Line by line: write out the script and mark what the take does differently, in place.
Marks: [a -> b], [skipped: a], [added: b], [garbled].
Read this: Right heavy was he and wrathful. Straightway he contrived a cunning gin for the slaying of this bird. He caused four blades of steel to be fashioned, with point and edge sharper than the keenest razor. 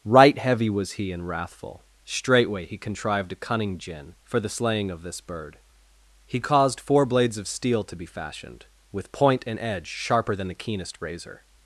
Right heavy was he and wrathful. Straightway he contrived a cunning gin for the slaying of this bird. He caused four blades of steel to be fashioned, with point and edge sharper than the keenest razor.